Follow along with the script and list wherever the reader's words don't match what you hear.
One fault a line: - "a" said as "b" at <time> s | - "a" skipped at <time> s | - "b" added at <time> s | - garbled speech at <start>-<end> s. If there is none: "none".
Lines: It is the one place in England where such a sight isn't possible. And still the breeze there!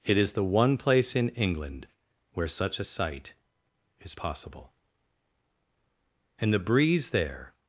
- "isn't" said as "is" at 4.0 s
- "still" skipped at 6.5 s